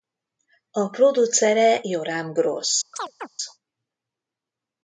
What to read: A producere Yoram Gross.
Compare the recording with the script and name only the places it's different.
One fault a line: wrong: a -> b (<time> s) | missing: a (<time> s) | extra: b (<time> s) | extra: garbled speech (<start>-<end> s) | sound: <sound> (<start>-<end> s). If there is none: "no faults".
sound: chirp (2.9-3.3 s)